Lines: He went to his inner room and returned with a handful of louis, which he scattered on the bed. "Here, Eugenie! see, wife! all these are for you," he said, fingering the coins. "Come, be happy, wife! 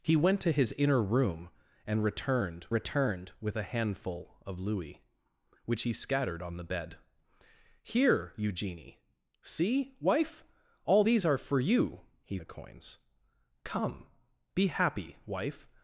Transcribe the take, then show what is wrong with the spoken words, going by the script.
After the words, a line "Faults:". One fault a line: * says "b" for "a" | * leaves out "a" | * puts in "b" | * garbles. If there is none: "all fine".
He went to his inner room and returned returned with a handful of louis, which he scattered on the bed. "Here, Eugenie! see, wife! all these are for you," he the coins. "Come, be happy, wife!
Faults:
* puts in "returned"
* leaves out "said fingering"